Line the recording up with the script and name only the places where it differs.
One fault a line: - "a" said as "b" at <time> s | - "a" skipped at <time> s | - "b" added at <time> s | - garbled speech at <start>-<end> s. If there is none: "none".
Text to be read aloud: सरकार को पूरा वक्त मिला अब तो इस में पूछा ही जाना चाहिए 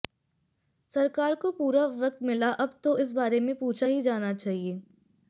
- "बारे" added at 3.1 s